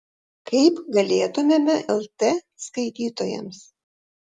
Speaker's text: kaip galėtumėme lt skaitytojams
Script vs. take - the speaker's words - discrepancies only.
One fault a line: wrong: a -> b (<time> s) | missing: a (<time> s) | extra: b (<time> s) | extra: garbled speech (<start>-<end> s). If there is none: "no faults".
no faults